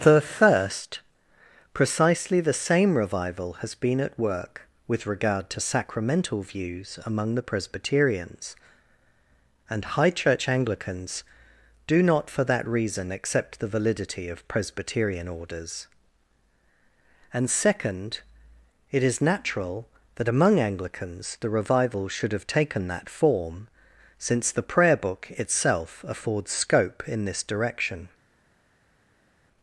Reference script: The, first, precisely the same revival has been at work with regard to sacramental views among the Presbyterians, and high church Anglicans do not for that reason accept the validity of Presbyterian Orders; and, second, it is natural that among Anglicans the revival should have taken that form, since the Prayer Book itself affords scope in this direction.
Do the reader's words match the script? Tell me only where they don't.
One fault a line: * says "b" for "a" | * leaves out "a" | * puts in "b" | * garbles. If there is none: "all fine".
all fine